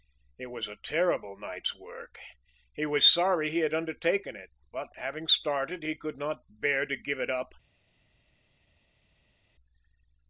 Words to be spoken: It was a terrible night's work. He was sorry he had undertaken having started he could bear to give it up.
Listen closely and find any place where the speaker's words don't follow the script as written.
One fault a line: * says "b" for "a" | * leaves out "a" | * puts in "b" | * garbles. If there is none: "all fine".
* puts in "it but"
* puts in "not"